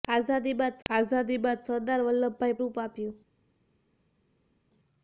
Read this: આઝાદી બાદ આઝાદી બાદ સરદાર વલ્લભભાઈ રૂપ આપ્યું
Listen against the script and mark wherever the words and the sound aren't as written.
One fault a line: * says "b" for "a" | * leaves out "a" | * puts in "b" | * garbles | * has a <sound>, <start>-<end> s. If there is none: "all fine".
all fine